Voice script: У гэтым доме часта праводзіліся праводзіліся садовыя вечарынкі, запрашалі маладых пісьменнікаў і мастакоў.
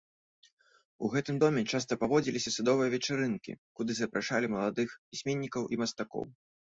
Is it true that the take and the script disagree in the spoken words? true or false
true